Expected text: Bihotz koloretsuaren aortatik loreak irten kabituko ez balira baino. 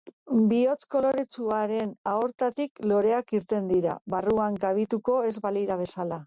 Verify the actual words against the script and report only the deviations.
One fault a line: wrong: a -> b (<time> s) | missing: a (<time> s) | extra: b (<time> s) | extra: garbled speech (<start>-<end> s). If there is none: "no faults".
extra: dira barruan (3.7 s)
wrong: baino -> bezala (5.8 s)